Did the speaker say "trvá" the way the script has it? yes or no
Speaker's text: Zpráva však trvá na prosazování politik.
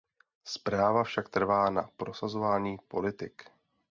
yes